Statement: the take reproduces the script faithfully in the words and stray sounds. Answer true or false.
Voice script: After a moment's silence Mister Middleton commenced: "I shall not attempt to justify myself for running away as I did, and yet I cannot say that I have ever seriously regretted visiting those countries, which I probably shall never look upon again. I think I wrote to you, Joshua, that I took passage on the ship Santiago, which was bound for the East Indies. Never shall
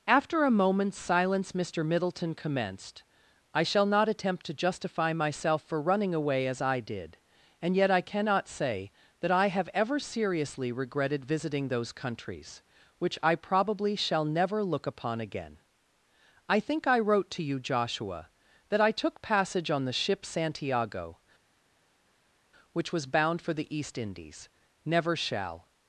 true